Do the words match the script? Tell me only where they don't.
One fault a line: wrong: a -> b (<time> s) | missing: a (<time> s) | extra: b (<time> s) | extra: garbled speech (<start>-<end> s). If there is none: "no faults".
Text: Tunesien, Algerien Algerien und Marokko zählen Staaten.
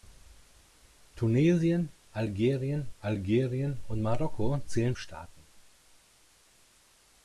no faults